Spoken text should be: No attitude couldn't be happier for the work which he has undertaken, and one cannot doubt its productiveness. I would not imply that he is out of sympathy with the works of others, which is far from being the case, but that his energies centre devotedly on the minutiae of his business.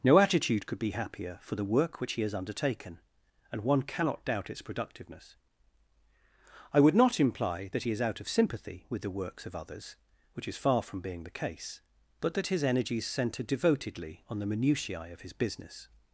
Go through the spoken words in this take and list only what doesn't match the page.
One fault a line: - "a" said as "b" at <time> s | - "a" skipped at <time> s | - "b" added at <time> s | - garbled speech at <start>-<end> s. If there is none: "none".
- "couldn't" said as "could" at 0.7 s